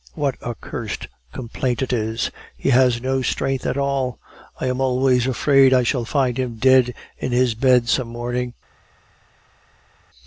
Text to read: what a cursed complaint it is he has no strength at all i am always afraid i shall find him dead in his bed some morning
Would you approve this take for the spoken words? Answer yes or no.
yes